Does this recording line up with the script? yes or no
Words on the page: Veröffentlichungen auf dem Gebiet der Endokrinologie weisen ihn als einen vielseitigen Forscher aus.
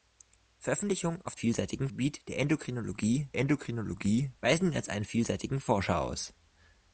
no